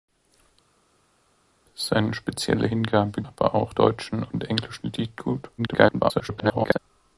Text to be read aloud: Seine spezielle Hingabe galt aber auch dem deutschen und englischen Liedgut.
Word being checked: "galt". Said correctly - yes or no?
no